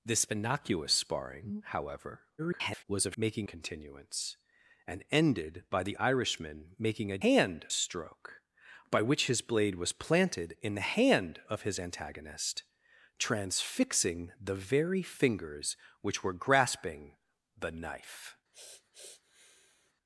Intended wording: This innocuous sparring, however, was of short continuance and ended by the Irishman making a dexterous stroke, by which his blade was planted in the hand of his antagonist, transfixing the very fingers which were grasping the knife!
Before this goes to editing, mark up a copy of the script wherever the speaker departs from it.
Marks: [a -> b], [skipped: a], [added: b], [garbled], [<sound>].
This innocuous sparring, however, [garbled] was of [short -> making] continuance and ended by the Irishman making a [dexterous -> hand] stroke, by which his blade was planted in the hand of his antagonist, transfixing the very fingers which were grasping the knife! [sniff]